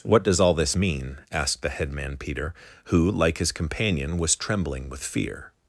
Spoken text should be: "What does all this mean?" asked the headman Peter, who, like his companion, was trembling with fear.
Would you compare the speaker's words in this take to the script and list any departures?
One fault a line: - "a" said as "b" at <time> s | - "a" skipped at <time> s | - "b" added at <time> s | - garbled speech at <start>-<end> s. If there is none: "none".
none